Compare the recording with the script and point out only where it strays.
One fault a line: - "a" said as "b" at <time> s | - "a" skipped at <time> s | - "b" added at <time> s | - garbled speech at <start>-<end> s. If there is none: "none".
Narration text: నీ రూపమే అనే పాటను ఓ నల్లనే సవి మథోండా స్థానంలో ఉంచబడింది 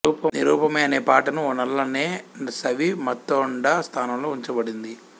none